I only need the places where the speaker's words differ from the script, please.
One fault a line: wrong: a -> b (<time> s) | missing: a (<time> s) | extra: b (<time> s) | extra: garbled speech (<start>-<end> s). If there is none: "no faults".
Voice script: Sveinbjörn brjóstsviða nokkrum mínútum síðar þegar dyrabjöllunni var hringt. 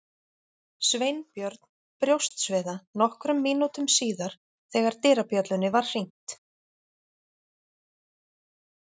no faults